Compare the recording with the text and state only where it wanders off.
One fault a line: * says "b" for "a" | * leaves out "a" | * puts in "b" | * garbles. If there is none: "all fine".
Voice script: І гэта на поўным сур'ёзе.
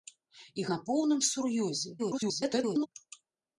* leaves out "гэта"
* garbles